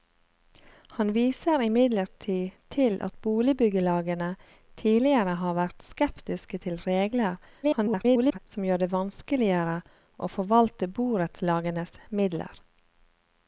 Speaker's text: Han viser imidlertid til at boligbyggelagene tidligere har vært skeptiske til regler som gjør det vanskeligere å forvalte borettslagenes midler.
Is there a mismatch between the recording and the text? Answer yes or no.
yes